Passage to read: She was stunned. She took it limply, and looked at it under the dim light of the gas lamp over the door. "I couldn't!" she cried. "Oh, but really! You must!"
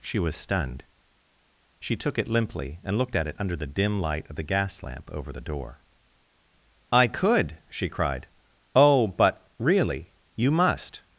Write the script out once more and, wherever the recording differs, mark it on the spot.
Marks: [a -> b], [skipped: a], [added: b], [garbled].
She was stunned. She took it limply, and looked at it under the dim light of the gas lamp over the door. "I [couldn't!" -> could] she cried. "Oh, but really! You must!"